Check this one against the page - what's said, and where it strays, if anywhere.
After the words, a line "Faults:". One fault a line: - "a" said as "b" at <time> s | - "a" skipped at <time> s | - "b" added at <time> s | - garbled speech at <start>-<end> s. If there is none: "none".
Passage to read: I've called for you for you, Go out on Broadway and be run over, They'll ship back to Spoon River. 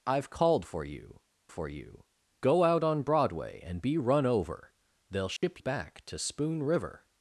I've called for you for you, Go out on Broadway and be run over, They'll ship back to Spoon River.
Faults:
none